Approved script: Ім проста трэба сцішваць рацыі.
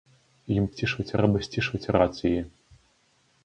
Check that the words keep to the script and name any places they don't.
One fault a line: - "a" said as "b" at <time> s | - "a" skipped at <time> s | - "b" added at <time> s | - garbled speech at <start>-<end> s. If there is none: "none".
- "проста" said as "сцішваць" at 0.7 s